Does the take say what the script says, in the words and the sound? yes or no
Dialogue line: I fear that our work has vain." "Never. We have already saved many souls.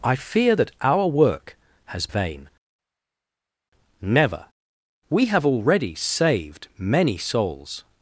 yes